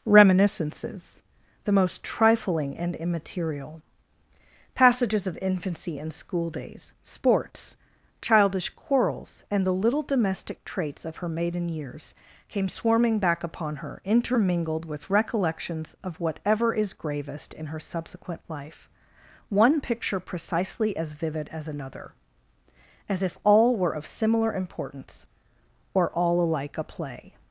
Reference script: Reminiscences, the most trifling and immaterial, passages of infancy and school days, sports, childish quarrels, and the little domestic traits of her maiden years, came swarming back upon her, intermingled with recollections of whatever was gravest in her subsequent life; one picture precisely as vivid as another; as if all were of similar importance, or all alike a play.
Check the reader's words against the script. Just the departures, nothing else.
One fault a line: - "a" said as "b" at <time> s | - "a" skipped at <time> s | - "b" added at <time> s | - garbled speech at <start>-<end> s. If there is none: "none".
- "was" said as "is" at 16.7 s